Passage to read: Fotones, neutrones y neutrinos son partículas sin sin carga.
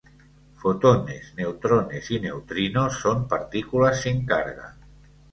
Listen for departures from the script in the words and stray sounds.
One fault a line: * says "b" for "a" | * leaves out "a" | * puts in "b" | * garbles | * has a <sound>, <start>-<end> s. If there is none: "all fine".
* leaves out "sin"